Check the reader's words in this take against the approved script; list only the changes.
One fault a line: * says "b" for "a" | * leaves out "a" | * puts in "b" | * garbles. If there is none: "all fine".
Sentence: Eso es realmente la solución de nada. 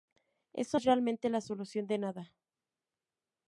all fine